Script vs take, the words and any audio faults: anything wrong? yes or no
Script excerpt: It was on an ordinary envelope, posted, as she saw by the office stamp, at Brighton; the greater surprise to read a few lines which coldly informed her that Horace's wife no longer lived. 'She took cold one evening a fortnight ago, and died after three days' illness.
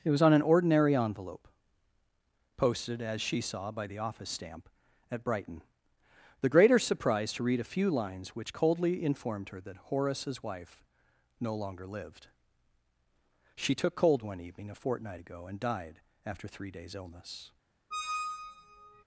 yes